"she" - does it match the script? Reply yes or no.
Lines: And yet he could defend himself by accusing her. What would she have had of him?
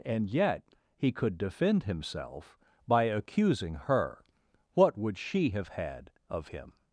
yes